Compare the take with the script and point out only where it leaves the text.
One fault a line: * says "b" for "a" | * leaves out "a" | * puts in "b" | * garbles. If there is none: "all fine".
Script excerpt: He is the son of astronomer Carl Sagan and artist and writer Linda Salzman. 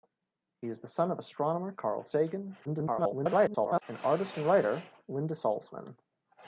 * garbles